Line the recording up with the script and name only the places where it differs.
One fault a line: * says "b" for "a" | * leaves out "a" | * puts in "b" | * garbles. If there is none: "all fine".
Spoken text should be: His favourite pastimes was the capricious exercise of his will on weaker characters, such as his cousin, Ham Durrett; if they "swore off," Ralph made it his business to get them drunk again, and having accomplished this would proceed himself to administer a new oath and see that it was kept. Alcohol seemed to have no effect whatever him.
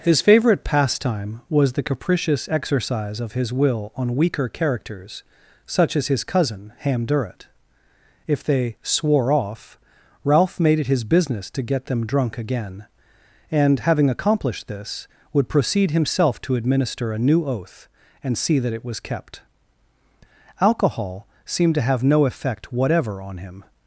* says "pastime" for "pastimes"
* puts in "on"